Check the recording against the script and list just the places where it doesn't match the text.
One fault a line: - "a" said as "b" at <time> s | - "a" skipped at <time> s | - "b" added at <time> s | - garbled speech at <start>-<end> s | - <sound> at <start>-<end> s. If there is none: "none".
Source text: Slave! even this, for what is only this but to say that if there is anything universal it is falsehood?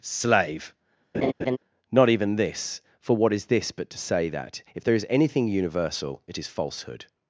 - laugh at 1.1-1.6 s
- "not" added at 1.9 s
- "only" skipped at 3.5 s